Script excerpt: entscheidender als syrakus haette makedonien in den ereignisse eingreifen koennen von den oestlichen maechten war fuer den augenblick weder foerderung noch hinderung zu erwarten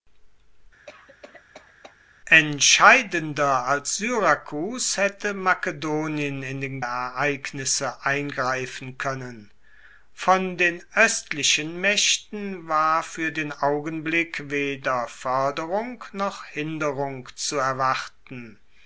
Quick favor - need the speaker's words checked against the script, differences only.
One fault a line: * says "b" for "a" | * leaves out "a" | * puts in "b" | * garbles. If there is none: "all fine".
all fine